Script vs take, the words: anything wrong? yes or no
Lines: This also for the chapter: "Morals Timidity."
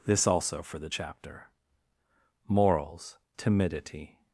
no